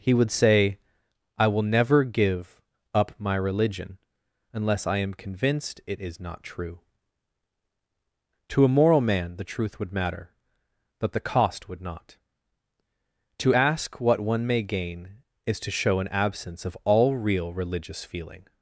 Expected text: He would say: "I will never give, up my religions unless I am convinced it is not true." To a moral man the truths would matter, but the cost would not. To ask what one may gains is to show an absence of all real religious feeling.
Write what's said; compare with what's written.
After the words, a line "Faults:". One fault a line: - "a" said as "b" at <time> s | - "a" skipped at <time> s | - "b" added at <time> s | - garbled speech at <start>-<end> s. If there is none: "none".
He would say: "I will never give, up my religion unless I am convinced it is not true." To a moral man the truth would matter, but the cost would not. To ask what one may gain is to show an absence of all real religious feeling.
Faults:
- "religions" said as "religion" at 3.4 s
- "truths" said as "truth" at 9.4 s
- "gains" said as "gain" at 14.6 s